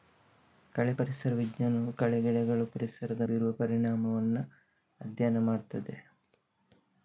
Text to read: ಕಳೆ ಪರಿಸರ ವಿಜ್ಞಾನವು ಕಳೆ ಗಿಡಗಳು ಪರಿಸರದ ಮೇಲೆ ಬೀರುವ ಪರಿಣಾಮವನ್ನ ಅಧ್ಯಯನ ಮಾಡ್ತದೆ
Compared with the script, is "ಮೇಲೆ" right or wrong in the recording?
wrong